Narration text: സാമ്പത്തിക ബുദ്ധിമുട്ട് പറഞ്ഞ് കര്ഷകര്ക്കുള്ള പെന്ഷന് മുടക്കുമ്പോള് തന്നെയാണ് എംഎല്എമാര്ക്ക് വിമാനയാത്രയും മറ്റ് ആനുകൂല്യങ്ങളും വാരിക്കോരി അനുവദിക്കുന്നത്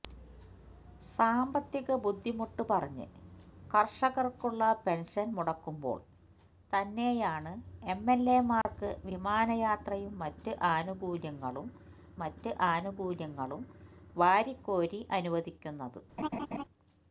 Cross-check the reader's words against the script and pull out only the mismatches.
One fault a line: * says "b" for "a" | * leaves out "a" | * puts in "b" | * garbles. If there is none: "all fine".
* puts in "മറ്റ് ആനുകൂല്യങ്ങളും"